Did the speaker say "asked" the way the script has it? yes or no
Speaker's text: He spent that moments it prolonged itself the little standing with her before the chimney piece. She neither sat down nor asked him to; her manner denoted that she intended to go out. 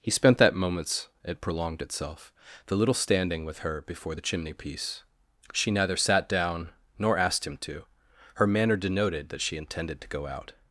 yes